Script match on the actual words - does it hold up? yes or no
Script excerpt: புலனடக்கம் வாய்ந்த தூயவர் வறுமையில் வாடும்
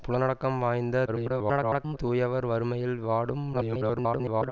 no